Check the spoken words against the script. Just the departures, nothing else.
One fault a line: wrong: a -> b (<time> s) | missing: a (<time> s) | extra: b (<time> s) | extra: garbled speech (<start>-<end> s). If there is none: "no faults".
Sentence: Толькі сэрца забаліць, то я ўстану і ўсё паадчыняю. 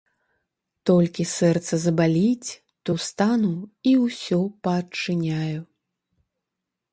missing: я (2.9 s)